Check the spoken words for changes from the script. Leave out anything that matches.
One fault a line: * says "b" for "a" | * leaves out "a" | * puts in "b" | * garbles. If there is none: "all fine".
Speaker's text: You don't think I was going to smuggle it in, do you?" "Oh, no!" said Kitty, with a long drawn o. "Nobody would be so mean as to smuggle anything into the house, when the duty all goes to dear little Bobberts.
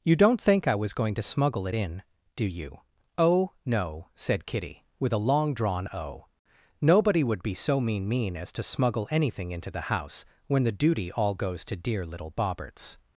* puts in "mean"